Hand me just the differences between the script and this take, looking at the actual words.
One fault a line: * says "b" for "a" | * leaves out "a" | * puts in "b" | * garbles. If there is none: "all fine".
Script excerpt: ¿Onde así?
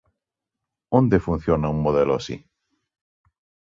* puts in "funciona un modelo"